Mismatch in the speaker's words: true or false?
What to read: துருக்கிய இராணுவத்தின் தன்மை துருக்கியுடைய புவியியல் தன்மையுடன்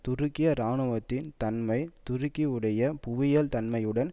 false